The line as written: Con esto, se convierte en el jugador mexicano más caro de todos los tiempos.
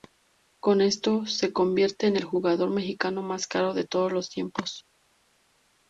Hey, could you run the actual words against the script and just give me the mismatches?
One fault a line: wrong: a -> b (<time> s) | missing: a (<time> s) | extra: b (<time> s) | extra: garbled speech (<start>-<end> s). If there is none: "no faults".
no faults